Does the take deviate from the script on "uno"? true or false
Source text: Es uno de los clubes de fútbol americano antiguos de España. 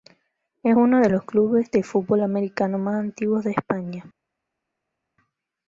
false